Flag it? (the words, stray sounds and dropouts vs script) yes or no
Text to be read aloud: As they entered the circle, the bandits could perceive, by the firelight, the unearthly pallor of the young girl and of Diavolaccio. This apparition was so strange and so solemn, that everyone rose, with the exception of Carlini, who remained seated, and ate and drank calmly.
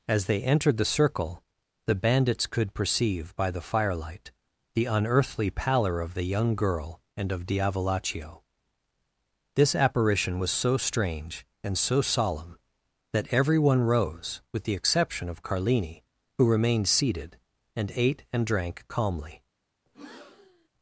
yes